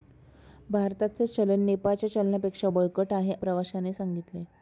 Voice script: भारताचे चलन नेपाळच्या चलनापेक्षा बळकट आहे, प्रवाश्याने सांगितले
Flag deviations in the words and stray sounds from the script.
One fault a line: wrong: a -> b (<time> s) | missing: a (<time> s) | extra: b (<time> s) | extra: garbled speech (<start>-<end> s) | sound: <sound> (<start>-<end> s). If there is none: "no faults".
no faults